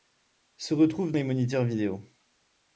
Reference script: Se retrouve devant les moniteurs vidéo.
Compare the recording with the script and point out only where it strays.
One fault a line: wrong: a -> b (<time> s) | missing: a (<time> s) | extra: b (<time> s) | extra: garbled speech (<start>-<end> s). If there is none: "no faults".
missing: devant (1.1 s)